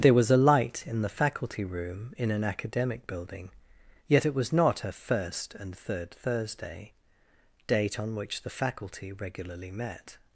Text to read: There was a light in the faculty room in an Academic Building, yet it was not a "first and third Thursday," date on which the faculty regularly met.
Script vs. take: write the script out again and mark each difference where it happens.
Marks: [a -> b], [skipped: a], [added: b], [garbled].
There was a light in the faculty room in an Academic Building, yet it was not a "first and third Thursday," date on which the faculty regularly met.